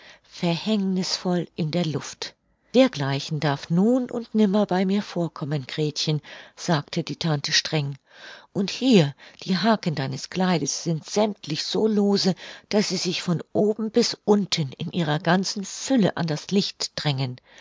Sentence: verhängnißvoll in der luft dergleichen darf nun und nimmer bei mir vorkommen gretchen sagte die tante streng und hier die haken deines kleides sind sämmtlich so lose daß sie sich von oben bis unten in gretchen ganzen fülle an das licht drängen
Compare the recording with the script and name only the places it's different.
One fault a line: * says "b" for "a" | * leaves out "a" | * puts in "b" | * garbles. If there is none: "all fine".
* says "ihrer" for "gretchen"